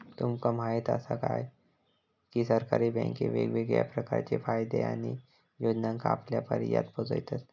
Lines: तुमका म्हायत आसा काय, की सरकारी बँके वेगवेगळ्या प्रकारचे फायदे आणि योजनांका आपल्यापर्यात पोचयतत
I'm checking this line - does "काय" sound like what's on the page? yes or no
yes